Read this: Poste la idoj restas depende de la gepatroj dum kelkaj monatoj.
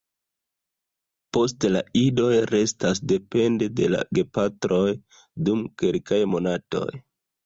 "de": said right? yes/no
yes